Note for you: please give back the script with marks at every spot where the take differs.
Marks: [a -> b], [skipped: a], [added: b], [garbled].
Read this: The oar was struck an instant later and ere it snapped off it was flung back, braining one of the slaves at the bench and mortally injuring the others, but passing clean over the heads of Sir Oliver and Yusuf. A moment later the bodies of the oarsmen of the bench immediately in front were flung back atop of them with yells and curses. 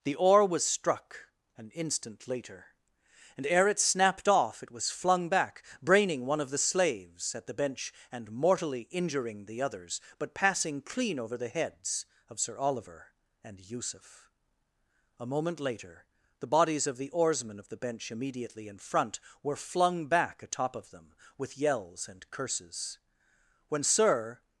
The oar was struck an instant later and ere it snapped off it was flung back, braining one of the slaves at the bench and mortally injuring the others, but passing clean over the heads of Sir Oliver and Yusuf. A moment later the bodies of the oarsmen of the bench immediately in front were flung back atop of them with yells and curses. [added: When Sir]